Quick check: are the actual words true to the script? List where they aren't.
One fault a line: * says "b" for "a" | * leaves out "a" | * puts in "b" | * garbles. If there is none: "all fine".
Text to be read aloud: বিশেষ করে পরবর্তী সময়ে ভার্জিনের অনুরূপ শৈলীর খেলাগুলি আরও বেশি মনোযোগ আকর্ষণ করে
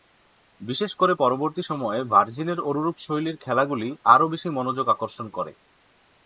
all fine